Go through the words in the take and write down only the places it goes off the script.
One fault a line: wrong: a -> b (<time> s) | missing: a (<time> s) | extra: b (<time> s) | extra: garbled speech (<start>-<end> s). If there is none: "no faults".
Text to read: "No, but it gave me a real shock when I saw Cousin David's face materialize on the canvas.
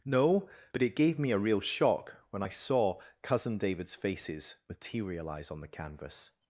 wrong: face -> faces (4.0 s)